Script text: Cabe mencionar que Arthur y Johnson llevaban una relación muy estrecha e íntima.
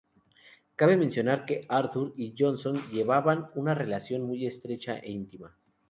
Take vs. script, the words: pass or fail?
pass